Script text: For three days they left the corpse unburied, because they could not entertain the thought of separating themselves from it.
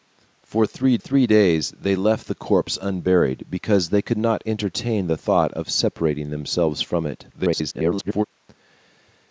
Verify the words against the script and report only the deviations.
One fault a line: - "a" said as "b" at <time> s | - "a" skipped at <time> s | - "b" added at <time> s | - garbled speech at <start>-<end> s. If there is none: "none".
- "three" added at 1.0 s
- garbled speech at 7.3-8.2 s